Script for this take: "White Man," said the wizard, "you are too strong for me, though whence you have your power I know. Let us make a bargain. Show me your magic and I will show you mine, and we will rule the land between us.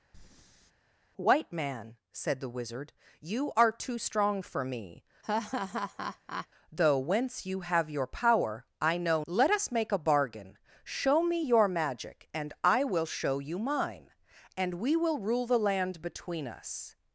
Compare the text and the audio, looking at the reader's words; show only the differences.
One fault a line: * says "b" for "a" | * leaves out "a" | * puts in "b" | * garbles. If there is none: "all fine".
all fine